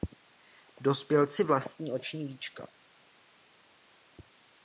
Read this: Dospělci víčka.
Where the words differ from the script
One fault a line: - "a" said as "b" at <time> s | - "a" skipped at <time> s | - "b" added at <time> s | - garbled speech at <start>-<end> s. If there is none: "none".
- "vlastní oční" added at 1.4 s